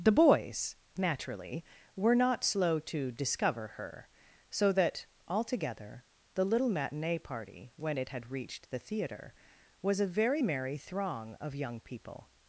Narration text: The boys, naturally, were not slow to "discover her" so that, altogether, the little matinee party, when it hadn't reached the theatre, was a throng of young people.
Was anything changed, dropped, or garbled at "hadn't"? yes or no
yes